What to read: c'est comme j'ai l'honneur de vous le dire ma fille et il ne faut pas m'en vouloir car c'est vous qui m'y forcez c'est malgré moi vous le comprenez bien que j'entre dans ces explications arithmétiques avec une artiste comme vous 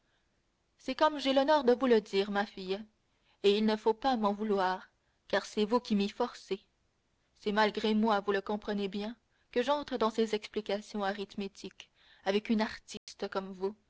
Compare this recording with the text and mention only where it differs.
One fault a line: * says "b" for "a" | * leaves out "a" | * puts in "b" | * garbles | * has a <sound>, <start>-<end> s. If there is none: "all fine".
* has a dropout, 13.0-13.1 s